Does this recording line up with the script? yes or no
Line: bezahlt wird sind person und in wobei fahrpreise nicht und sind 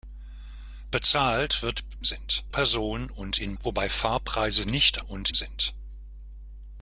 yes